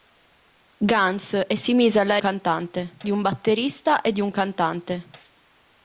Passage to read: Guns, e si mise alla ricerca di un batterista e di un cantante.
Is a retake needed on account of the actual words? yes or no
yes